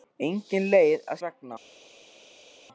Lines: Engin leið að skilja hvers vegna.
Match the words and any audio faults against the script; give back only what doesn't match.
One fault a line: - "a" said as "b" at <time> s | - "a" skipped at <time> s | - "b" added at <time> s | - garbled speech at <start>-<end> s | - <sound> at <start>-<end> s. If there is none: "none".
- "skilja hvers" skipped at 1.2 s